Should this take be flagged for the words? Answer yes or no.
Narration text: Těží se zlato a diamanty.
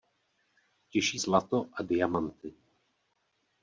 yes